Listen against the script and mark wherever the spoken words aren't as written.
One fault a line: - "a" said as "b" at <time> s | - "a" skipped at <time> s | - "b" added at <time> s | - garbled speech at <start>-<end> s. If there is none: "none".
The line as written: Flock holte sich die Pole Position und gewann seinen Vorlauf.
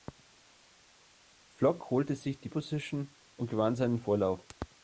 - "Pole" skipped at 2.5 s